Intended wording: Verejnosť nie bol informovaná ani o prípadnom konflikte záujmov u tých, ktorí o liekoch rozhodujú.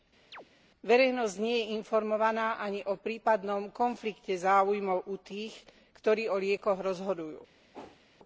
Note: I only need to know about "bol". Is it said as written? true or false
false